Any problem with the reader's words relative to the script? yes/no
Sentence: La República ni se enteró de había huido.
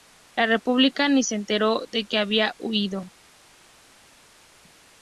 yes